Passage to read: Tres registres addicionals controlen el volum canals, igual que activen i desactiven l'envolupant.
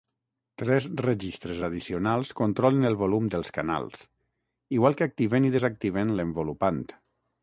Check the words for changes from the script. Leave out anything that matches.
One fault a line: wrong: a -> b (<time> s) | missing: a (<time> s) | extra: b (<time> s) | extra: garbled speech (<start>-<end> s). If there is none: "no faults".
extra: dels (3.3 s)